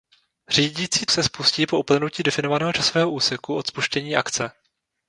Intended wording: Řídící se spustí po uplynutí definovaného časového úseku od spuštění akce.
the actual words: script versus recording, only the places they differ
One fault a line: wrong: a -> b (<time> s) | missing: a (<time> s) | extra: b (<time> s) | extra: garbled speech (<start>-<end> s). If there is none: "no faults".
no faults